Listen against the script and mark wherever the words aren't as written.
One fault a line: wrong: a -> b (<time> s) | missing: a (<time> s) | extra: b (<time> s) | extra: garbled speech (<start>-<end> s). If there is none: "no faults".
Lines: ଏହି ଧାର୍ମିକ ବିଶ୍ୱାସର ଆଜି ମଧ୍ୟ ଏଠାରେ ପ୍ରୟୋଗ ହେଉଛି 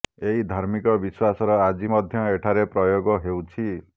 no faults